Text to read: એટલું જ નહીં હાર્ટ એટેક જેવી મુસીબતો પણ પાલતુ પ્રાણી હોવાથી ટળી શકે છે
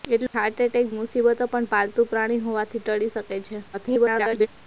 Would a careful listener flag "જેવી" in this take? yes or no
yes